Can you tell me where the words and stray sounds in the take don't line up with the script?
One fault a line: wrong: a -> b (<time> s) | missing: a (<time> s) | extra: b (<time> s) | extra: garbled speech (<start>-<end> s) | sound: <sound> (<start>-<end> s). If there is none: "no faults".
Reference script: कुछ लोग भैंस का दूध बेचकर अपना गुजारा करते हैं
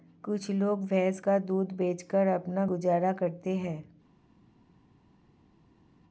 no faults